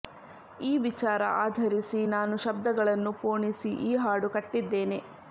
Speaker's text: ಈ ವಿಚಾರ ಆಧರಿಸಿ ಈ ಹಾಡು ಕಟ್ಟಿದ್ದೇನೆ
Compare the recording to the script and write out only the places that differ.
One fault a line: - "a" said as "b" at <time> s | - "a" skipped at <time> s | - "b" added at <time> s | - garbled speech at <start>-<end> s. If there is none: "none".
- "ನಾನು ಶಬ್ದಗಳನ್ನು ಪೋಣಿಸಿ" added at 2.1 s